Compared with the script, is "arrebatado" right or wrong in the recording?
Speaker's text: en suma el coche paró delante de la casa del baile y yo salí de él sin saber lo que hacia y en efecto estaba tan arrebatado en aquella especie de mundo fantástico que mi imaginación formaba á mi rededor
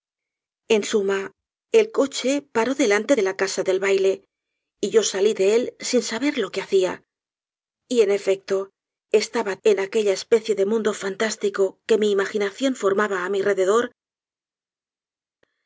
wrong